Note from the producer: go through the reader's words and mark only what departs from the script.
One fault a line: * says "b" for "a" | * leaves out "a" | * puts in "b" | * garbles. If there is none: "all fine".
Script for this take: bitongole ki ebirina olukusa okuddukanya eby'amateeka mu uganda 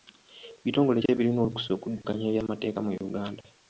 all fine